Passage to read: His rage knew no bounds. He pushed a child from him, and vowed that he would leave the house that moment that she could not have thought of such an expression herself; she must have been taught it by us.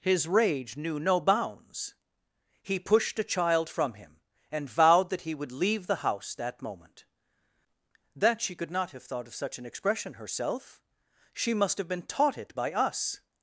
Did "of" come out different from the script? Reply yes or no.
no